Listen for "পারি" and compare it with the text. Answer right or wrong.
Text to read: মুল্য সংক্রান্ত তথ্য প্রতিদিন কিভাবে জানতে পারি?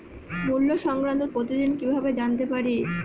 right